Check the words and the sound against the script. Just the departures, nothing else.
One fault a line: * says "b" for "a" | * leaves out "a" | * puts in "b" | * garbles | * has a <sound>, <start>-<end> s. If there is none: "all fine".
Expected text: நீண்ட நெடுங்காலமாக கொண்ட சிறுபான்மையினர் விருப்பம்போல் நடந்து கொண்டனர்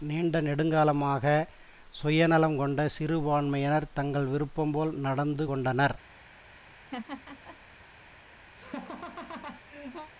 * puts in "சுயநலம்"
* puts in "தங்கள்"
* has a laugh, 6.6-7.6 s
* has a laugh, 8.6-10.1 s